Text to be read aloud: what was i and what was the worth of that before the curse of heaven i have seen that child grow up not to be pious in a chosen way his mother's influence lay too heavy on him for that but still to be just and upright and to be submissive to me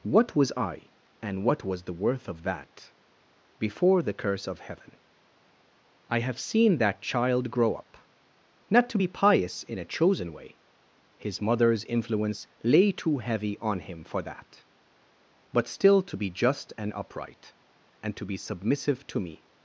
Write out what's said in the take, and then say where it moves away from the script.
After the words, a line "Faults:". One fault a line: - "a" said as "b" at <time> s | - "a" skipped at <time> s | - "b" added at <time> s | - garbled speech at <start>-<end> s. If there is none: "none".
what was i and what was the worth of that before the curse of heaven i have seen that child grow up not to be pious in a chosen way his mother's influence lay too heavy on him for that but still to be just and upright and to be submissive to me
Faults:
none